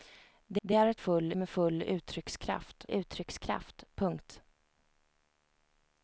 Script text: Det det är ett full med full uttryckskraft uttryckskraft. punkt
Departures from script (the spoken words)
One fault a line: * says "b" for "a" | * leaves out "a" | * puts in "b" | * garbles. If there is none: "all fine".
all fine